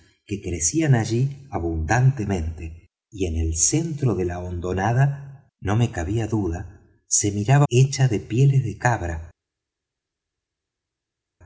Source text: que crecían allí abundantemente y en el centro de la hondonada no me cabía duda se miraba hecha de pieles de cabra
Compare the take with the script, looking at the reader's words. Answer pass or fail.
pass